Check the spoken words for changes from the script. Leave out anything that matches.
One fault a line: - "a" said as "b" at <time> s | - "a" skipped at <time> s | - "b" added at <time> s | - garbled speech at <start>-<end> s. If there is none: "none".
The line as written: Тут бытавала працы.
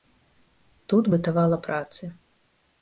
none